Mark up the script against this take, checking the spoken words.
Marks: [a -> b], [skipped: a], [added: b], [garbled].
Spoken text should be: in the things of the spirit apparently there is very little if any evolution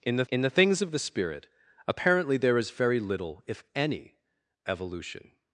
in the [added: in the] things of the spirit apparently there is very little if any evolution